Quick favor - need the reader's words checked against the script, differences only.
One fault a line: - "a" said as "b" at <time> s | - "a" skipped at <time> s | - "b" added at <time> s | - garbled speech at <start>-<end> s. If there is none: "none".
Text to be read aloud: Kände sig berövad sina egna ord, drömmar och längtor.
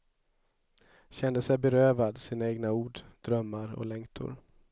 none